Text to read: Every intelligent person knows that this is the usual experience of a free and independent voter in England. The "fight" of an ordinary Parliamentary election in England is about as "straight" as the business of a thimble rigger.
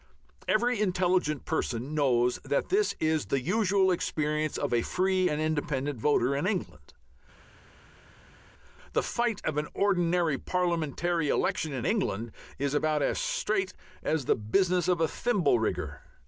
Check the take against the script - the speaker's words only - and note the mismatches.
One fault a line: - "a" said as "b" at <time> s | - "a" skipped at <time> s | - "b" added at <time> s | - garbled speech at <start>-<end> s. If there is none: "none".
none